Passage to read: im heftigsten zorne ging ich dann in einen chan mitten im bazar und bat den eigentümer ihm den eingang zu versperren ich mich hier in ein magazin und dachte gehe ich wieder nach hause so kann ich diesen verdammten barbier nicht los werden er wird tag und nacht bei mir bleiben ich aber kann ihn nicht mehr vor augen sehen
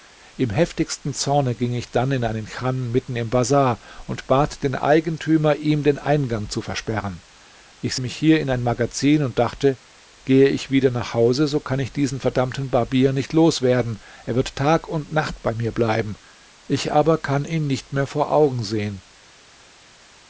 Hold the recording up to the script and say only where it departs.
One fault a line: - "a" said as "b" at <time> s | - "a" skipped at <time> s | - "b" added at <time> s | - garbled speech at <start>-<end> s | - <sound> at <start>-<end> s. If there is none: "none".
none